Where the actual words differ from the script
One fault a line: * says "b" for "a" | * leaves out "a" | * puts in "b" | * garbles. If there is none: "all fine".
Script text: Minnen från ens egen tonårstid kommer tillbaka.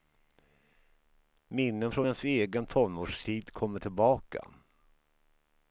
all fine